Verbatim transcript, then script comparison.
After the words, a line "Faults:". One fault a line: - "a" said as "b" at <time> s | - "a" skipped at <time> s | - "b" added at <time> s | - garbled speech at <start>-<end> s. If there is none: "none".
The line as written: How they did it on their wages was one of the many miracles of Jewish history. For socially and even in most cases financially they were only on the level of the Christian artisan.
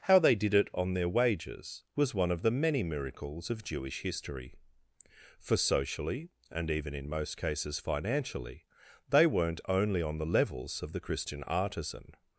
How they did it on their wages was one of the many miracles of Jewish history. For socially and even in most cases financially they weren't only on the levels of the Christian artisan.
Faults:
- "were" said as "weren't" at 9.3 s
- "level" said as "levels" at 10.3 s